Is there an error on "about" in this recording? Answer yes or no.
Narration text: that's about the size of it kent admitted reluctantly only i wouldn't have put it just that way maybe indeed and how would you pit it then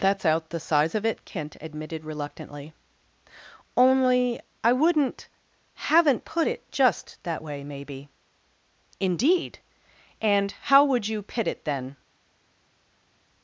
yes